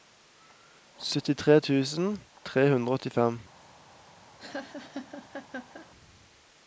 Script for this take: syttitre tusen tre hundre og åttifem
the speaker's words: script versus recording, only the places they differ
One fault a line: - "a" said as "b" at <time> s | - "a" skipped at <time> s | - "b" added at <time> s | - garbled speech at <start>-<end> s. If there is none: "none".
none